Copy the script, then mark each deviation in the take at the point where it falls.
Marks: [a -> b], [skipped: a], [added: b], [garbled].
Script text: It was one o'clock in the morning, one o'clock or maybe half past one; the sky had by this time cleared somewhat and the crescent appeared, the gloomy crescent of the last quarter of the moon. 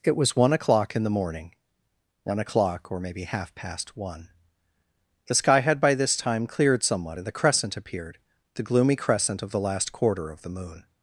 It was one o'clock in the morning, one o'clock or maybe half past one; the sky had by this time cleared somewhat and the crescent appeared, the gloomy crescent of the last quarter of the moon.